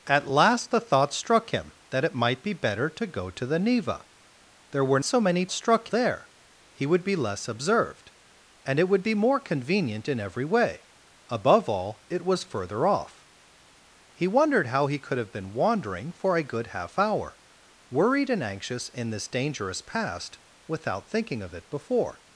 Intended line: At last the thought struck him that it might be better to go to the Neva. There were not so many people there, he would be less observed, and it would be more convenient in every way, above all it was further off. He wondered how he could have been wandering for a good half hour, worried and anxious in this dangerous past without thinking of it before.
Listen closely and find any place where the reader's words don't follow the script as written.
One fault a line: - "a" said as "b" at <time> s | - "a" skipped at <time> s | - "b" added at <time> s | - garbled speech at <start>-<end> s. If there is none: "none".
- "not" skipped at 5.0 s
- "people" said as "struck" at 5.5 s